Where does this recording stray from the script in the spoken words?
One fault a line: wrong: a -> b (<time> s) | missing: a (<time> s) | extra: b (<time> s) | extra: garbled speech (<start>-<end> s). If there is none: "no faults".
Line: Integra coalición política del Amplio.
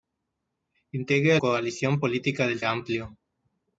no faults